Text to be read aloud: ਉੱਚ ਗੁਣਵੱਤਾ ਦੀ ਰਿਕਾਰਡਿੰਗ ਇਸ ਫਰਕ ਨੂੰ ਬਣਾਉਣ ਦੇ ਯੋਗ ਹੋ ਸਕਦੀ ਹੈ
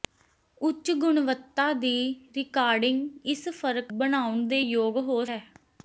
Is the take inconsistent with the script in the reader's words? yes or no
yes